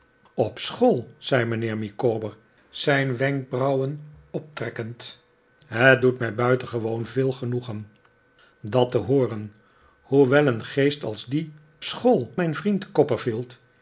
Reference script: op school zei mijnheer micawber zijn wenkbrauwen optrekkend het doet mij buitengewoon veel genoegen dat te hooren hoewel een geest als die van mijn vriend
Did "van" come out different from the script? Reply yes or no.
yes